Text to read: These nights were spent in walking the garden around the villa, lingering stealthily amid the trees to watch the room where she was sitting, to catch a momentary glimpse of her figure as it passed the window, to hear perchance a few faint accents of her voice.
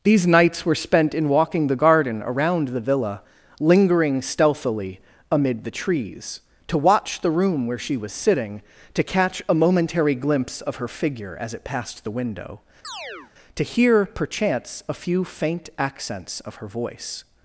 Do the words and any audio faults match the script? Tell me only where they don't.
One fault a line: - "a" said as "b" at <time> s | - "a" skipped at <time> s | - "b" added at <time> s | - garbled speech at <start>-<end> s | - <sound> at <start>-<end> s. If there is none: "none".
- chirp at 12.8-13.3 s